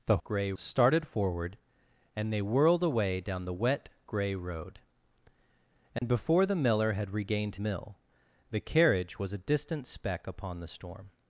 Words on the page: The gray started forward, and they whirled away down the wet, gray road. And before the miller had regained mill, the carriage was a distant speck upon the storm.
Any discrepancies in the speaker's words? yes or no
no